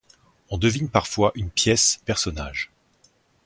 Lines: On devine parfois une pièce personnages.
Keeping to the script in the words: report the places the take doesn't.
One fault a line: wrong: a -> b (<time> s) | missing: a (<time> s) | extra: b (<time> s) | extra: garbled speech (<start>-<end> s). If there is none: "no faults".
no faults